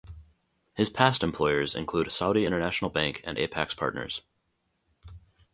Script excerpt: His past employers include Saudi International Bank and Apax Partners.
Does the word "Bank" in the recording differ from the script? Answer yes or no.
no